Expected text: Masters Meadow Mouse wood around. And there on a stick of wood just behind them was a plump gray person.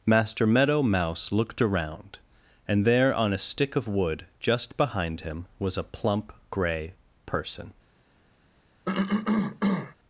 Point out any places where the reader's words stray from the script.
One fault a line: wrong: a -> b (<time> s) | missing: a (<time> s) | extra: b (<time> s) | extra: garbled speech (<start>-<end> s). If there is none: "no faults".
wrong: Masters -> Master (0.1 s)
wrong: wood -> looked (1.3 s)
wrong: them -> him (5.2 s)